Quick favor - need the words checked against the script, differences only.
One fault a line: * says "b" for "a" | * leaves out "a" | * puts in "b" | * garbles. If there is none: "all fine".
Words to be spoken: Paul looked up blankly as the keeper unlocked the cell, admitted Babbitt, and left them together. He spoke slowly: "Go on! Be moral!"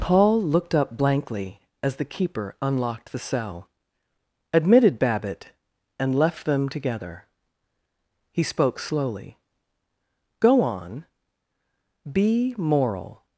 all fine